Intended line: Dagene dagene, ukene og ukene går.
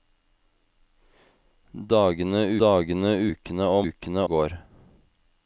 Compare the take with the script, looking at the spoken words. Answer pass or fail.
pass